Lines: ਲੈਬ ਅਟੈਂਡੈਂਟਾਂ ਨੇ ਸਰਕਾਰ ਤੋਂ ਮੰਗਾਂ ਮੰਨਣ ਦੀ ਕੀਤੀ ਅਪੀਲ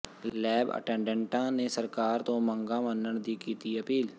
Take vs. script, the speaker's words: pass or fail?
pass